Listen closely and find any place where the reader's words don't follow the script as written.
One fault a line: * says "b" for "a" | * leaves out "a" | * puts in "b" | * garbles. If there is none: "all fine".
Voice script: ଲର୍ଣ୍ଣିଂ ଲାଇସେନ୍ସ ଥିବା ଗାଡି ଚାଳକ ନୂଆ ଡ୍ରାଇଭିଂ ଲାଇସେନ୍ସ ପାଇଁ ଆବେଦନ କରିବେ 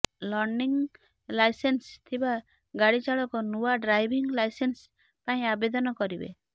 all fine